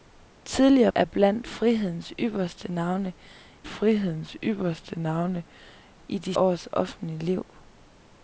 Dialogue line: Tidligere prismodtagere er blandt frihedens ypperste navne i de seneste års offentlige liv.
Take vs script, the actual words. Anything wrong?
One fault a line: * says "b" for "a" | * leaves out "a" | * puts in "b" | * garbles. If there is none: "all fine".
* leaves out "prismodtagere"
* puts in "frihedens ypperste navne"
* leaves out "seneste"